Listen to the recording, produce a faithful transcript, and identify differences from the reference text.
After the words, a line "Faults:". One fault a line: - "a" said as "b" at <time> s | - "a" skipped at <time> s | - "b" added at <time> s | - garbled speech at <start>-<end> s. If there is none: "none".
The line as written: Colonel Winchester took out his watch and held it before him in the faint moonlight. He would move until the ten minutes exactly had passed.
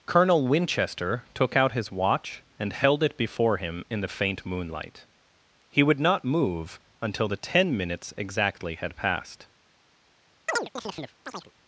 Colonel Winchester took out his watch and held it before him in the faint moonlight. He would not move until the ten minutes exactly had passed.
Faults:
- "not" added at 6.0 s